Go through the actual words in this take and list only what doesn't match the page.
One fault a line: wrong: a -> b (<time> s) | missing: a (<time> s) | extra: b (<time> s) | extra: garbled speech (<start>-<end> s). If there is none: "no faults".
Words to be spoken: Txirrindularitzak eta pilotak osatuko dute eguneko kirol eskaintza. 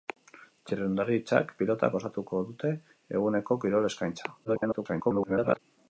missing: eta (1.5 s)
extra: garbled speech (4.4-5.6 s)